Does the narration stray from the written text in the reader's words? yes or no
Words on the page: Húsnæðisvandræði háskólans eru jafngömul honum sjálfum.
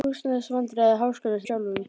yes